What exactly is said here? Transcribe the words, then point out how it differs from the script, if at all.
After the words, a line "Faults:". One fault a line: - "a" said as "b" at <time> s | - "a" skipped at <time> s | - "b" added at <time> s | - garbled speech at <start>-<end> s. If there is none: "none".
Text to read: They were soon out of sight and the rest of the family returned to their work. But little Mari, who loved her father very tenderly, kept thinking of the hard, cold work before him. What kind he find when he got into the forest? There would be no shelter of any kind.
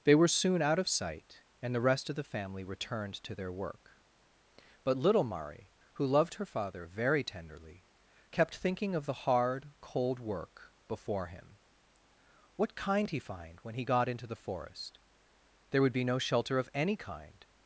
They were soon out of sight and the rest of the family returned to their work. But little Mari, who loved her father very tenderly, kept thinking of the hard, cold work before him. What kind he find when he got into the forest? There would be no shelter of any kind.
Faults:
none